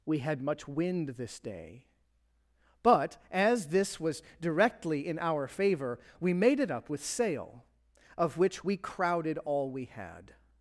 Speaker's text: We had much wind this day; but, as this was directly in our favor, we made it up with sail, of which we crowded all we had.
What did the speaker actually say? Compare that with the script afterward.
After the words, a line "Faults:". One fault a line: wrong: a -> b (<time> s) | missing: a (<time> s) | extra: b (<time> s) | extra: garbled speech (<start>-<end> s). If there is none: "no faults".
We had much wind this day; but, as this was directly in our favor, we made it up with sail, of which we crowded all we had.
Faults:
no faults